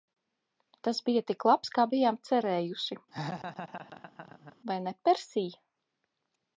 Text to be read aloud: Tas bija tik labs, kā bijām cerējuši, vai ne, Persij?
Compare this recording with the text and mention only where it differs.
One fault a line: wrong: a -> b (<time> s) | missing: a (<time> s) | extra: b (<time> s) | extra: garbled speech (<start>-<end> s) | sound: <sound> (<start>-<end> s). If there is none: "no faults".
sound: laugh (3.1-4.6 s)